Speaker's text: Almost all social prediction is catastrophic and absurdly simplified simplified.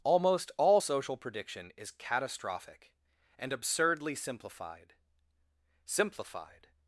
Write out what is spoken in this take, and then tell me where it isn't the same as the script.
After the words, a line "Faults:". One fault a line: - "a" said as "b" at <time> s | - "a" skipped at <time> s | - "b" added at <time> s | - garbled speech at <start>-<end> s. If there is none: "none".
Almost all social prediction is catastrophic and absurdly simplified simplified.
Faults:
none